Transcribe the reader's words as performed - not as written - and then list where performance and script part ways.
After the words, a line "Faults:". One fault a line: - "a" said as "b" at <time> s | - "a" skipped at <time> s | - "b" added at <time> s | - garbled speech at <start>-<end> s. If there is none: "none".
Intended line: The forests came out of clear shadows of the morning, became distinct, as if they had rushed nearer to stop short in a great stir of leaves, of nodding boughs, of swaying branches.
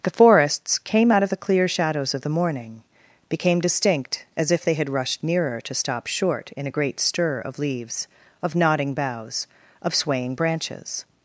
The forests came out of the clear shadows of the morning, became distinct, as if they had rushed nearer to stop short in a great stir of leaves, of nodding boughs, of swaying branches.
Faults:
- "the" added at 1.3 s